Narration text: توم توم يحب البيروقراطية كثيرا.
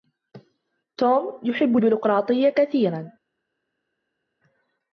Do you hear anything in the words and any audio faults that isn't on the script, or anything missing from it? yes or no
yes